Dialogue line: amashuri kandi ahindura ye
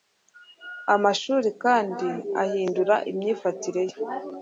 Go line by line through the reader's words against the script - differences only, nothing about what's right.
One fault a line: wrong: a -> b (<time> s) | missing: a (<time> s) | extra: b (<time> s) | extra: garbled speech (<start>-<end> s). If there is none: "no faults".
extra: imyifatire (3.1 s)